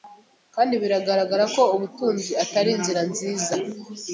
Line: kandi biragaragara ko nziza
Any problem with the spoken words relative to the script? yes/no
yes